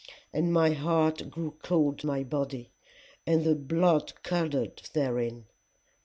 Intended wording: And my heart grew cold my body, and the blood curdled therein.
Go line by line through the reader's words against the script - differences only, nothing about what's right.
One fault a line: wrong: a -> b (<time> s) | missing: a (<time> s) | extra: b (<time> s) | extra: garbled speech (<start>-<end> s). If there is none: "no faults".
no faults